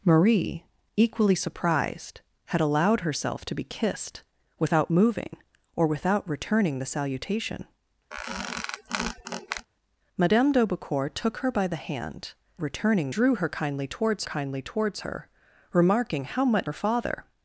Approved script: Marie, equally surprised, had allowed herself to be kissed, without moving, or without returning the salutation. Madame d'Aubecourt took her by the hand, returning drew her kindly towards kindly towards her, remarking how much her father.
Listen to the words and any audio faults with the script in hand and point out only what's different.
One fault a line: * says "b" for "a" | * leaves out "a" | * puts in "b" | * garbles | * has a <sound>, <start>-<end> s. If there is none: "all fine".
* has a squeak, 8.1-9.7 s